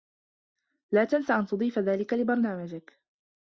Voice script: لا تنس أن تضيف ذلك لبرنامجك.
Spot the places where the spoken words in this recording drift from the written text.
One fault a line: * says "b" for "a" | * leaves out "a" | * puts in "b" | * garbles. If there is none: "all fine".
all fine